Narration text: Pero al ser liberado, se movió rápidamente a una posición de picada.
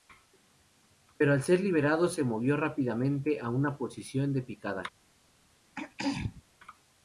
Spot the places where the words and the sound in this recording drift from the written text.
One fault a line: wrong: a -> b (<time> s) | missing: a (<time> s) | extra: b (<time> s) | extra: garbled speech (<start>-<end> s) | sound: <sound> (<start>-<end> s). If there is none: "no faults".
sound: throat clearing (5.7-6.4 s)